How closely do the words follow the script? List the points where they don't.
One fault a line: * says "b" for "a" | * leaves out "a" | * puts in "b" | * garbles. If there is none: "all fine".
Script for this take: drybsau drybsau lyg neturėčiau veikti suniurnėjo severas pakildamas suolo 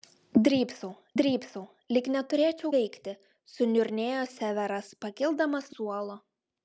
all fine